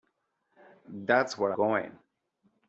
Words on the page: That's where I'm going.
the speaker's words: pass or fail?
fail